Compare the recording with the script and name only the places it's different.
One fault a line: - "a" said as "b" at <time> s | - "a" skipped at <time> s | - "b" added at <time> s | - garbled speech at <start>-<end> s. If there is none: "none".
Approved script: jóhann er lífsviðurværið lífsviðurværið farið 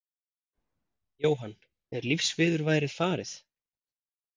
- "lífsviðurværið" skipped at 3.0 s